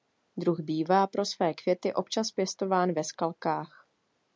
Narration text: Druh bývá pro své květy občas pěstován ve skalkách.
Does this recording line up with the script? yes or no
yes